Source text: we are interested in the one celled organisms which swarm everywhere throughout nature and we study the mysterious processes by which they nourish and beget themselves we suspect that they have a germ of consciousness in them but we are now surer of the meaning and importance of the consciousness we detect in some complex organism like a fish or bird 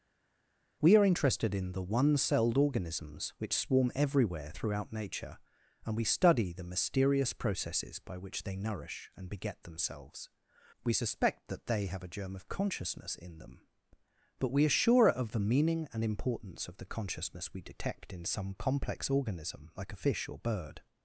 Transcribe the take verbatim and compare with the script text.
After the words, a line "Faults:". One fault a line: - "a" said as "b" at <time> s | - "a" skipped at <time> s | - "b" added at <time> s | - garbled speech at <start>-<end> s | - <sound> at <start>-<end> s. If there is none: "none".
we are interested in the one celled organisms which swarm everywhere throughout nature and we study the mysterious processes by which they nourish and beget themselves we suspect that they have a germ of consciousness in them but we are surer of the meaning and importance of the consciousness we detect in some complex organism like a fish or bird
Faults:
- "now" skipped at 14.8 s